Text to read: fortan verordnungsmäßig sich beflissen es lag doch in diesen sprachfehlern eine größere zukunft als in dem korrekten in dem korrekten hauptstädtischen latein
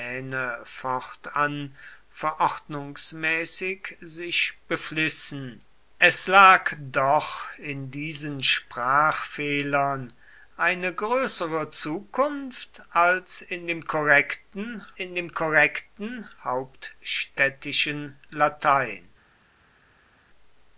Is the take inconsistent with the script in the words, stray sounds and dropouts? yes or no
no